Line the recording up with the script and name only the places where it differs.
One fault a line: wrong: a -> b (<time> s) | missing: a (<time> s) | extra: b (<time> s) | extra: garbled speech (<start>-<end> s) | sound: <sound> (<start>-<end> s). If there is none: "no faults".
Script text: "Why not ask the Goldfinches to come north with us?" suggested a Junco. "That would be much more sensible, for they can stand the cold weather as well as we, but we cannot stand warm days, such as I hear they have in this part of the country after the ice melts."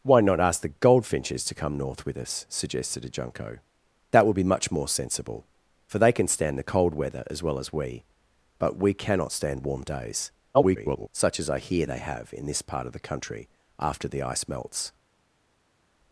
extra: garbled speech (10.5-11.1 s)